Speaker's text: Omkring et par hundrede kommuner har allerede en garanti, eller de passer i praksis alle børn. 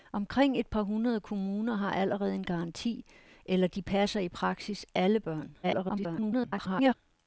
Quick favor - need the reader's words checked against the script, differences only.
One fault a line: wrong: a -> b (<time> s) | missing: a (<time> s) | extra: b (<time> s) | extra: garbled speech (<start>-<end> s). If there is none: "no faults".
extra: garbled speech (5.6-6.9 s)